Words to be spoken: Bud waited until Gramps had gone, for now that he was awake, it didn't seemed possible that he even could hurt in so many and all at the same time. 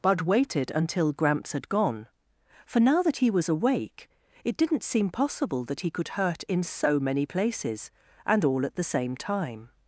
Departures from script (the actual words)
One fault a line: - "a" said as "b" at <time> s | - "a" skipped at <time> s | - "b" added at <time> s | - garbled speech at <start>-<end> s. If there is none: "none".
- "seemed" said as "seem" at 4.8 s
- "even" skipped at 5.9 s
- "places" added at 7.2 s